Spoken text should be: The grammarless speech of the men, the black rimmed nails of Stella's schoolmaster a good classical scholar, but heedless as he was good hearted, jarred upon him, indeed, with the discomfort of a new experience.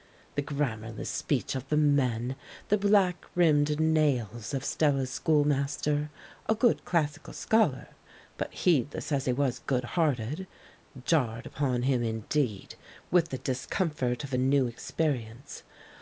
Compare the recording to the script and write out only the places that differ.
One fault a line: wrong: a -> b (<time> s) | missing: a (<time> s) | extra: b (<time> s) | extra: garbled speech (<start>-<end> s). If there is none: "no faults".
no faults